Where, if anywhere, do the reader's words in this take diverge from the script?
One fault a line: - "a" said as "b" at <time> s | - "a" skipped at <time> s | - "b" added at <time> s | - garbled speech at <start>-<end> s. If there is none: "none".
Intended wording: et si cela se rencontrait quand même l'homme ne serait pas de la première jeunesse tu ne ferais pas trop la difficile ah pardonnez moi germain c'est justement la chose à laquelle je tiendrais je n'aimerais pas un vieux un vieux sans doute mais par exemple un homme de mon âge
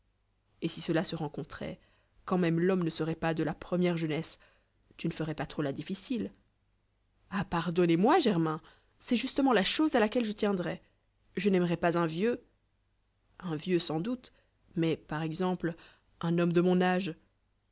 none